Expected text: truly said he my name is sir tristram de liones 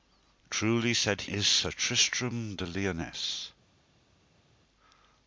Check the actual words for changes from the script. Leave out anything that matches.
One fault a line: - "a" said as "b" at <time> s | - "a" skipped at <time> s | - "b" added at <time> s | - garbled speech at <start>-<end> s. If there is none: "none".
- "he my name" skipped at 1.2 s